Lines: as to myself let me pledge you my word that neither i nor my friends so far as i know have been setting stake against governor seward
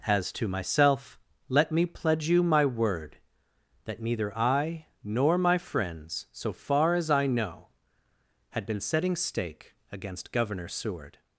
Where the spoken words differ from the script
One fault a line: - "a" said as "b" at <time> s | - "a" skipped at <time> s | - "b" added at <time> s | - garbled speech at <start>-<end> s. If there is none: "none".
- "have" said as "had" at 8.5 s